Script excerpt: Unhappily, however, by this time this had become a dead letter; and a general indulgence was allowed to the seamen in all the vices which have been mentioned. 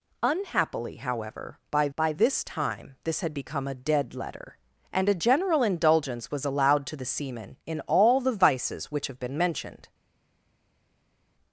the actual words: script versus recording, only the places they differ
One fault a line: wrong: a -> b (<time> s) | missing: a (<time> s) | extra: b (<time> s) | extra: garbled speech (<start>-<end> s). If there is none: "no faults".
extra: by (2.0 s)